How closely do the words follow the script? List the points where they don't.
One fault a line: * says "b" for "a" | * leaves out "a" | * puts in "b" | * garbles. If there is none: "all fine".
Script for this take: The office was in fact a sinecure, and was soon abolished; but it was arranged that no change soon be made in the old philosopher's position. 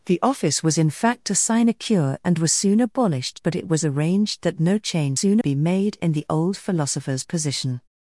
all fine